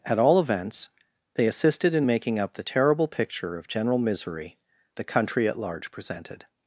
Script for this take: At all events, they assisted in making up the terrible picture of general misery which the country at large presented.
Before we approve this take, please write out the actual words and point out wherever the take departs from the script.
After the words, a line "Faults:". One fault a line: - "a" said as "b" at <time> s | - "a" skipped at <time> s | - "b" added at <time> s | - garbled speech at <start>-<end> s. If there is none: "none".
At all events, they assisted in making up the terrible picture of general misery the country at large presented.
Faults:
- "which" skipped at 4.6 s